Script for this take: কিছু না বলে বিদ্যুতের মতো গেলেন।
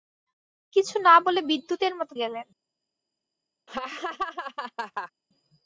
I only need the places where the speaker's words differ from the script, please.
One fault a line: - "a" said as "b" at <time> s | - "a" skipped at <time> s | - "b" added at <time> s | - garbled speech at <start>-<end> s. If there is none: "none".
none